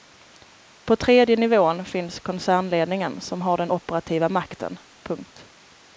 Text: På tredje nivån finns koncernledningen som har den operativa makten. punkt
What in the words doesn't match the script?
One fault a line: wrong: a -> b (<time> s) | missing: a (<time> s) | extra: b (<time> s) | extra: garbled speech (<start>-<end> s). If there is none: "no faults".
no faults